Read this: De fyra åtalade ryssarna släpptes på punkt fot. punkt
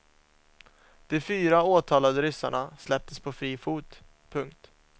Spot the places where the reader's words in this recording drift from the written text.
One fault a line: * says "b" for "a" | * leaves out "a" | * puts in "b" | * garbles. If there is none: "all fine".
* says "fri" for "punkt"